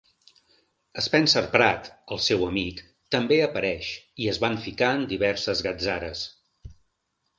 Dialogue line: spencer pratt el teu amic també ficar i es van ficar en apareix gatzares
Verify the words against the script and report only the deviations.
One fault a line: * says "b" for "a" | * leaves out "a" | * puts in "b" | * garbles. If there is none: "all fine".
* says "seu" for "teu"
* says "apareix" for "ficar"
* says "diverses" for "apareix"